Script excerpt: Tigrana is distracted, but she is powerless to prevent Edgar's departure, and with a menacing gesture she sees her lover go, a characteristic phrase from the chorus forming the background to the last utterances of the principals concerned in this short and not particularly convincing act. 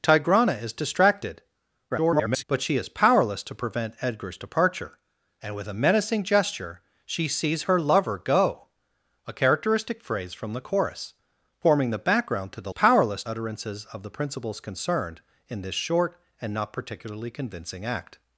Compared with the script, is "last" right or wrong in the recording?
wrong